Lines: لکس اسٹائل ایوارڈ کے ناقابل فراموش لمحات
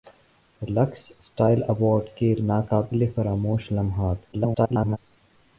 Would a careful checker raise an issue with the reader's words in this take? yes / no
yes